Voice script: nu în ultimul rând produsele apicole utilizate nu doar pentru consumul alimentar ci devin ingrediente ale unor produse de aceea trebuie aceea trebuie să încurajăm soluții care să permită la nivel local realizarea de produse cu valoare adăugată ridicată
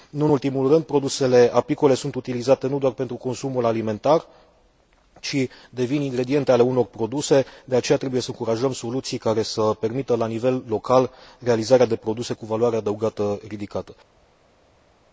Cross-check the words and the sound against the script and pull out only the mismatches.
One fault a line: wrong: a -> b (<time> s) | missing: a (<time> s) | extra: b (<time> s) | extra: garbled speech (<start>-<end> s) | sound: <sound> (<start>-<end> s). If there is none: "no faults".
extra: sunt (1.9 s)
missing: aceea trebuie (8.2 s)